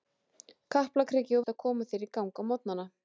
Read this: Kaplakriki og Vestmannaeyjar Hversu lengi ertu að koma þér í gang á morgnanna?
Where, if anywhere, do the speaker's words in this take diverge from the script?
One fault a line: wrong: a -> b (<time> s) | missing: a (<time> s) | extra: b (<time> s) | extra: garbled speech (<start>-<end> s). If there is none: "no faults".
missing: Vestmannaeyjar Hversu lengi (1.4 s)